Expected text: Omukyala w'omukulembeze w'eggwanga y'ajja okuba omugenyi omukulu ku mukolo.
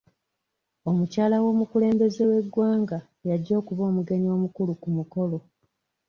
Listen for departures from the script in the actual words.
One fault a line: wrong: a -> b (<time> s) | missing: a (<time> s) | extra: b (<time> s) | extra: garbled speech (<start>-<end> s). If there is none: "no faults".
no faults